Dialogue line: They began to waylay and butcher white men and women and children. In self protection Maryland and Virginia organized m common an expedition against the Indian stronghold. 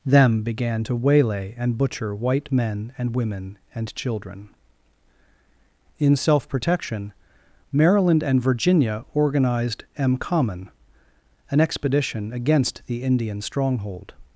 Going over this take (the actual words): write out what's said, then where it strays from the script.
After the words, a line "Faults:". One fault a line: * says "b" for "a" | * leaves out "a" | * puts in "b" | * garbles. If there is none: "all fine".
Them began to waylay and butcher white men and women and children. In self protection Maryland and Virginia organized m common an expedition against the Indian stronghold.
Faults:
* says "Them" for "They"